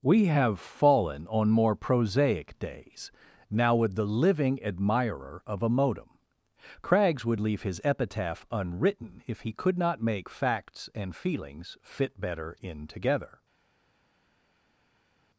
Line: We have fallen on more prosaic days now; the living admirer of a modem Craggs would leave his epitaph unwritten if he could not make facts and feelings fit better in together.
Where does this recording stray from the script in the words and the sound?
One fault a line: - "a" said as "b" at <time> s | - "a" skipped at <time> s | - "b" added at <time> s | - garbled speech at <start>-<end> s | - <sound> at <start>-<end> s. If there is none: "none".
- "with" added at 3.8 s